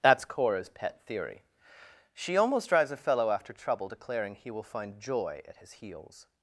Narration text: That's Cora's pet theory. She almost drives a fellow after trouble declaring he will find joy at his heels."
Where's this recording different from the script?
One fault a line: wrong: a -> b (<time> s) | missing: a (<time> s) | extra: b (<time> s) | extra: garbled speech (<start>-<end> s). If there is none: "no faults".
no faults